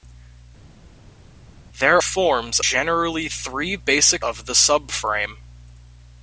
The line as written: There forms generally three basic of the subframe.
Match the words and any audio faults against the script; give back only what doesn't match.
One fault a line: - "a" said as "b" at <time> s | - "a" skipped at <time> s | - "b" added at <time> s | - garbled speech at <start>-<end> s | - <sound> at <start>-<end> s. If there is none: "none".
none